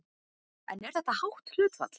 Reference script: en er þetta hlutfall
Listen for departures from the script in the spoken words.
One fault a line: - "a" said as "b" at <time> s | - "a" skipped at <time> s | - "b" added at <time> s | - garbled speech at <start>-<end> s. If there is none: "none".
- "hátt" added at 1.2 s